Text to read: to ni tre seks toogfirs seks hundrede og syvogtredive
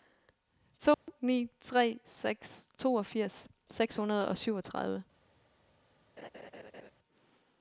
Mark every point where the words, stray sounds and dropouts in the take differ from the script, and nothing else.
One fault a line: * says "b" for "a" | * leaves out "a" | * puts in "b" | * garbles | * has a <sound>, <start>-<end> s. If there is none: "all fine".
* has a dropout, 0.9-1.1 s
* has a laugh, 6.2-6.9 s